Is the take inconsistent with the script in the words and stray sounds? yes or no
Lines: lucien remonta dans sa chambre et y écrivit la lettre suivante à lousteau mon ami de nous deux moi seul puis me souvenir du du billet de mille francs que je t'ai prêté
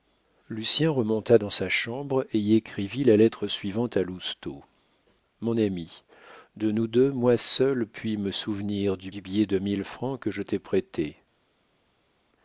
no